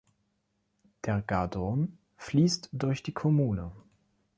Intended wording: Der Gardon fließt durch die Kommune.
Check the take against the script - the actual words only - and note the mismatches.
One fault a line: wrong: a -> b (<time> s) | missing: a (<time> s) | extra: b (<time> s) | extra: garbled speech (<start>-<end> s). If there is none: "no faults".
no faults